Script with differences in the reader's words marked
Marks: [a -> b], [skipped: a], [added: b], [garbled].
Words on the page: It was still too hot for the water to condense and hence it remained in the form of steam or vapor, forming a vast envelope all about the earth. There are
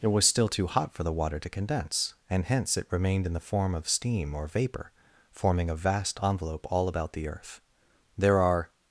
It was still too hot for the water to condense and hence it remained in the form of steam or vapor, forming a vast envelope all about the earth. There are